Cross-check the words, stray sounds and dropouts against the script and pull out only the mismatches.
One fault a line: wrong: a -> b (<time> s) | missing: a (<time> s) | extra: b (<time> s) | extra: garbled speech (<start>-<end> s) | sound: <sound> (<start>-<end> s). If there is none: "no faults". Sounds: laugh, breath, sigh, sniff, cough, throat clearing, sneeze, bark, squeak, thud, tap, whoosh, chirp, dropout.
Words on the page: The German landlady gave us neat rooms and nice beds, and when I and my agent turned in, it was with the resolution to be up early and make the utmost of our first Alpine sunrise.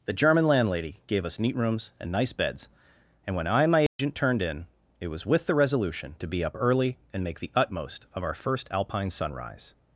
sound: dropout (3.9-4.0 s)